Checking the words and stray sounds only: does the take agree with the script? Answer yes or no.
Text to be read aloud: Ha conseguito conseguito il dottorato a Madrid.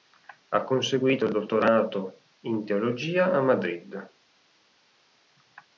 no